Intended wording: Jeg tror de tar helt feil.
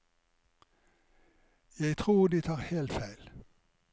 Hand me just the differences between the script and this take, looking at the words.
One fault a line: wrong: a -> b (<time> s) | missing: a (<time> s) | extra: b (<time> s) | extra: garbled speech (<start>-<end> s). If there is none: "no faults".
no faults